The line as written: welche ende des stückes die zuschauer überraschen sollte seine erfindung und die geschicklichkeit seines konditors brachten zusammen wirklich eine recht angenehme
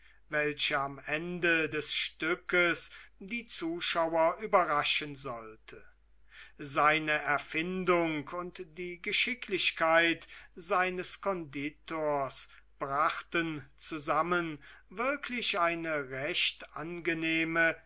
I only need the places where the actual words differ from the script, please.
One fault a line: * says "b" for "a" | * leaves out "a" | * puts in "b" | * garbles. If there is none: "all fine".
* puts in "am"